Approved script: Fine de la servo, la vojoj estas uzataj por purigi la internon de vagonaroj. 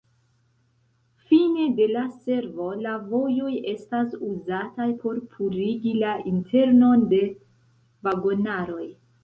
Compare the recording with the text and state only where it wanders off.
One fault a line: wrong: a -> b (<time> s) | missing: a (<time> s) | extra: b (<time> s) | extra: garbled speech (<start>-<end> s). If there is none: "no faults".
no faults